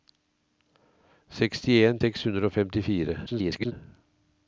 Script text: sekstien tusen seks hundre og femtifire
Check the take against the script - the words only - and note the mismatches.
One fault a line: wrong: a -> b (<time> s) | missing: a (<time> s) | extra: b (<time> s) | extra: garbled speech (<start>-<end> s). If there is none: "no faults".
missing: tusen (2.0 s)
extra: garbled speech (3.3-3.7 s)